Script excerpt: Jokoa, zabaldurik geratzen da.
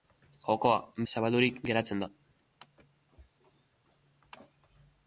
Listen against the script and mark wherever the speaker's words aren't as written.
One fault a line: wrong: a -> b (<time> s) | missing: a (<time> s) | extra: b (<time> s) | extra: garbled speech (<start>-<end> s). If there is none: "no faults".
no faults